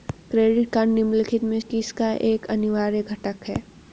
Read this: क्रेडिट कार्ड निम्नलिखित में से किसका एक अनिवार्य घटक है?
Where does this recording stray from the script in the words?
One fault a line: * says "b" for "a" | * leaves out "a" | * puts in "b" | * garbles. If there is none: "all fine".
* leaves out "से"